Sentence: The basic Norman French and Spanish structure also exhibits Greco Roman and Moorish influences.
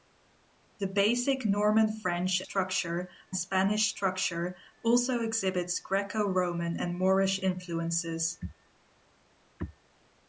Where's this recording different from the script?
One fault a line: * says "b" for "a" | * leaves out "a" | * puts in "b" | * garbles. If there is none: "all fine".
* says "structure" for "and"